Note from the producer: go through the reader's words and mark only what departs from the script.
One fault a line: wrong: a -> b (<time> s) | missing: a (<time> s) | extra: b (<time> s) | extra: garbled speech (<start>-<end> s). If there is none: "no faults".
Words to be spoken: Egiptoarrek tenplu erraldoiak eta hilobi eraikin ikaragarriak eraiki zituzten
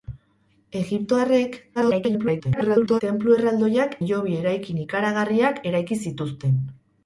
extra: garbled speech (1.8-3.0 s)
missing: eta (3.9 s)